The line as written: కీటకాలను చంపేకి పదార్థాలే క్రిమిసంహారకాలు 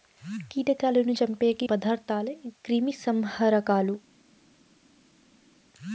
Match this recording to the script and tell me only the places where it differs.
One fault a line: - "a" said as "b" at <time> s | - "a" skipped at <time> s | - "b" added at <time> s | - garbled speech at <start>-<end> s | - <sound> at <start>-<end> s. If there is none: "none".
none